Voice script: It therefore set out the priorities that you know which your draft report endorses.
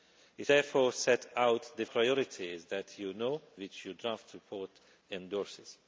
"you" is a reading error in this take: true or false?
false